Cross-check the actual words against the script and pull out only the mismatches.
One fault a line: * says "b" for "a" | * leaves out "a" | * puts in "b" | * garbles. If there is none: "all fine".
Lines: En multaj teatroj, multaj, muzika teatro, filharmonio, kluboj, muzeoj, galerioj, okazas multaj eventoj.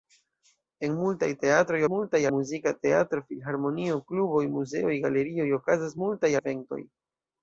all fine